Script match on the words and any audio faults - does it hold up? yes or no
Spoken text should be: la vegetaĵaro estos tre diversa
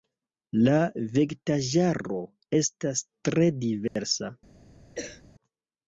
no